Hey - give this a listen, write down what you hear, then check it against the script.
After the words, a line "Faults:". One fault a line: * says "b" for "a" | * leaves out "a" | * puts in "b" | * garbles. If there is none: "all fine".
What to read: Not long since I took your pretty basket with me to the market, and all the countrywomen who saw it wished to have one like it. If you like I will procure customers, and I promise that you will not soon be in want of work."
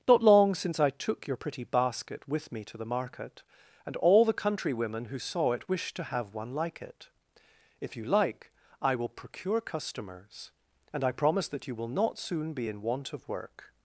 Not long since I took your pretty basket with me to the market, and all the countrywomen who saw it wished to have one like it. If you like I will procure customers, and I promise that you will not soon be in want of work."
Faults:
all fine